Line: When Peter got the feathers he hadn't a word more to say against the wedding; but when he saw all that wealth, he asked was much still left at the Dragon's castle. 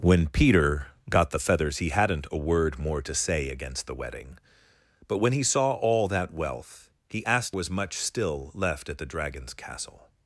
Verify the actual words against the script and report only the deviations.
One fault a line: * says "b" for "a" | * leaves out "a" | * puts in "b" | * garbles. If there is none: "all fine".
all fine